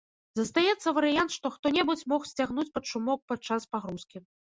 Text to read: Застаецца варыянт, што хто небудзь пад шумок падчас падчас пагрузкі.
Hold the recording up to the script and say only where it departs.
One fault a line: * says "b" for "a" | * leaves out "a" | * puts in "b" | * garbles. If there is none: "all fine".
* puts in "мог сцягнуць"
* leaves out "падчас"